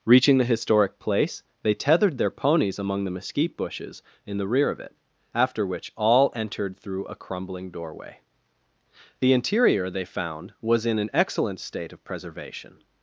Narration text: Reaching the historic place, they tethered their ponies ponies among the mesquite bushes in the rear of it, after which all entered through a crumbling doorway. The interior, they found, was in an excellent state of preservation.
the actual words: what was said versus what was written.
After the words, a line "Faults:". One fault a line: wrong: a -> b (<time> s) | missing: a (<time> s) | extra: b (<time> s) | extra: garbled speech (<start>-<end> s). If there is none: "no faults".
Reaching the historic place, they tethered their ponies among the mesquite bushes in the rear of it, after which all entered through a crumbling doorway. The interior, they found, was in an excellent state of preservation.
Faults:
missing: ponies (2.8 s)